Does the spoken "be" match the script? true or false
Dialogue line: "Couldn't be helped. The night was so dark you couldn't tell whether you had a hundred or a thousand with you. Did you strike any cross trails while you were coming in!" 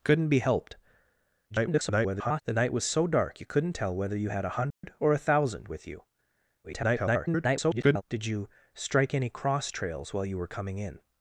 true